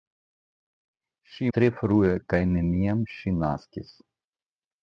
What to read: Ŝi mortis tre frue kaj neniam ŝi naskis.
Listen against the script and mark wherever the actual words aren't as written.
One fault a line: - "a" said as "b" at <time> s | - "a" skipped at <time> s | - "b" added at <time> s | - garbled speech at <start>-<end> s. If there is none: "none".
- "mortis" skipped at 1.5 s